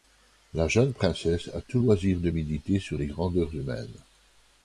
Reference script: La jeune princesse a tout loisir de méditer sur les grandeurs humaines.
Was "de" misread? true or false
false